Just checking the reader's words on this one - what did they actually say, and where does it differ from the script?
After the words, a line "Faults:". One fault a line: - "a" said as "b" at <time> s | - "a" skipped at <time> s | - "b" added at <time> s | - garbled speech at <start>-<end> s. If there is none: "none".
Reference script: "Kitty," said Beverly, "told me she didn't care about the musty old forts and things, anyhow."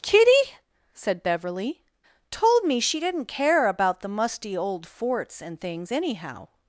"Kitty," said Beverly, "told me she didn't care about the musty old forts and things, anyhow."
Faults:
none